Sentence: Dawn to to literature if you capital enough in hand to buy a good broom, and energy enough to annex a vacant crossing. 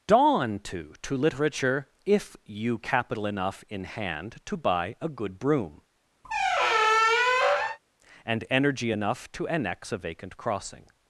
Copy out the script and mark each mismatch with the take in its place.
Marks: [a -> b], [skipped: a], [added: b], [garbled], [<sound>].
Dawn to to literature if you capital enough in hand to buy a good broom, [squeak] and energy enough to annex a vacant crossing.